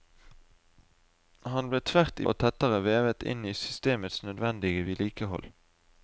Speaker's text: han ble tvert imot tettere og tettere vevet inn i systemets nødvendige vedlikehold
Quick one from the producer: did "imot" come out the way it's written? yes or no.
no